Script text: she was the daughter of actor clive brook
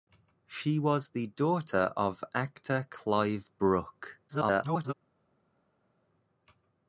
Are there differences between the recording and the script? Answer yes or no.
yes